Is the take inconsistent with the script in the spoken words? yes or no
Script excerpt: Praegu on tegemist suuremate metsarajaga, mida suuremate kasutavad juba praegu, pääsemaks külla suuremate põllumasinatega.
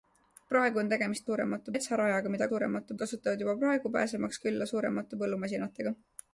no